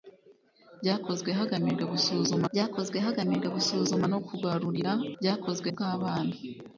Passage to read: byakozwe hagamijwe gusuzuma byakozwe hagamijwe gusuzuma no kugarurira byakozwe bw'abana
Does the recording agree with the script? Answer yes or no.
yes